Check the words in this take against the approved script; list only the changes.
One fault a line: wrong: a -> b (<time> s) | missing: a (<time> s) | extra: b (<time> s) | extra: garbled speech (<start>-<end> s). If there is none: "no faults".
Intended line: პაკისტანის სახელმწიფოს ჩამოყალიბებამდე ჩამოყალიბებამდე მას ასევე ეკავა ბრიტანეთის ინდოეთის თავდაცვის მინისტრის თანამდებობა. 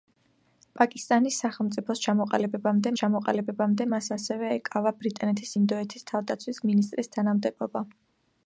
no faults